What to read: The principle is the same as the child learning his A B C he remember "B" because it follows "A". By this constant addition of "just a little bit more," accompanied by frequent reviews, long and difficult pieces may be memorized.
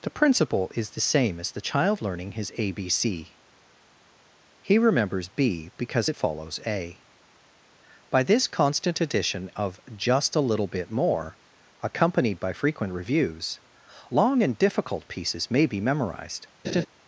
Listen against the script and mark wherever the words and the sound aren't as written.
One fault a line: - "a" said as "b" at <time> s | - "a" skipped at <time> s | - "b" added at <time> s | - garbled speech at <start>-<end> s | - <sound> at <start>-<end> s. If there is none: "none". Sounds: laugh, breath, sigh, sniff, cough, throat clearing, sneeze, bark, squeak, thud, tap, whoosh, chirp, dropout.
- "remember" said as "remembers" at 4.8 s
- laugh at 16.6-16.9 s